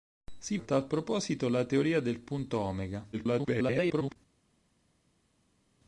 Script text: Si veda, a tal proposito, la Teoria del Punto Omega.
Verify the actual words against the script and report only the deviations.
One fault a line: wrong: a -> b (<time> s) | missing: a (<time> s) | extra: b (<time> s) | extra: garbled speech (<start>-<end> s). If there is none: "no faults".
missing: veda (0.6 s)
extra: garbled speech (3.1-4.2 s)